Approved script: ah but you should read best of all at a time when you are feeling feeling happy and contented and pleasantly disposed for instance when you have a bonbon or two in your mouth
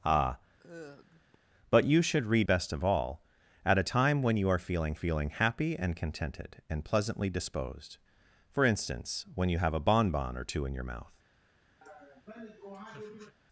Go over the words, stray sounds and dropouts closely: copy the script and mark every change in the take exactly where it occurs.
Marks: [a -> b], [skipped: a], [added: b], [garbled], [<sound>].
ah [sigh] but you should read best of all at a time when you are feeling feeling happy and contented and pleasantly disposed for instance when you have a bonbon or two in your mouth [laugh]